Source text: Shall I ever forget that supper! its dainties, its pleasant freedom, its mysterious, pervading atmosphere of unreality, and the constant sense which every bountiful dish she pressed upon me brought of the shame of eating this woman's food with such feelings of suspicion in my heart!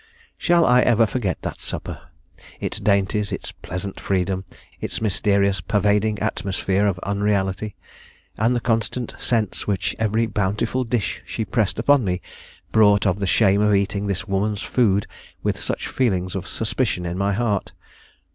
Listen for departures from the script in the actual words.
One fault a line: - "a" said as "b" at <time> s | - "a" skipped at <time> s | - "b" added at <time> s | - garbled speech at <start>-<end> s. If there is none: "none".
none